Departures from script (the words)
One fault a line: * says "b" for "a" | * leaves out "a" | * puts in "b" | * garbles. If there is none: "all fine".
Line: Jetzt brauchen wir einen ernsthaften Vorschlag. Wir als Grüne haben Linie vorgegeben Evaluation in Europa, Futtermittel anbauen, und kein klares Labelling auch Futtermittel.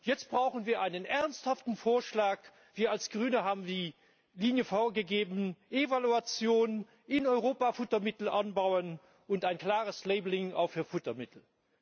* puts in "die"
* says "ein" for "kein"
* puts in "für"